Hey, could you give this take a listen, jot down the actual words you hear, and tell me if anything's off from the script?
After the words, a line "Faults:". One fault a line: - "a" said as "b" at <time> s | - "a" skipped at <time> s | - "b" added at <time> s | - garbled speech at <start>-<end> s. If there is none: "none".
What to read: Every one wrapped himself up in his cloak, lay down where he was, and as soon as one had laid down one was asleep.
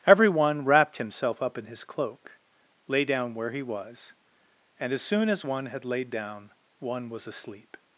Every one wrapped himself up in his cloak, lay down where he was, and as soon as one had laid down one was asleep.
Faults:
none